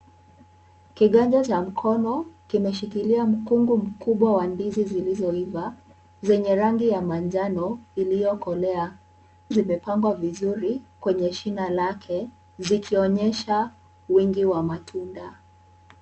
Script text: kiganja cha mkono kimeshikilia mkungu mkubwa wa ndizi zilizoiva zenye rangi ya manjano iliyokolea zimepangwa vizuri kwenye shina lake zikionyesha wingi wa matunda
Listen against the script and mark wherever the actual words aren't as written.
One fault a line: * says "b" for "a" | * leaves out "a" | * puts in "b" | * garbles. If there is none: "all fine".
all fine